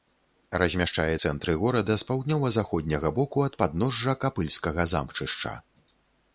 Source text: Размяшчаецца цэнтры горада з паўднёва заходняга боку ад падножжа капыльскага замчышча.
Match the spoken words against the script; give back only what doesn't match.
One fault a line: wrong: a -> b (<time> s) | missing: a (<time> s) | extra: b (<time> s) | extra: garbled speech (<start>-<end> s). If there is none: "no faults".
no faults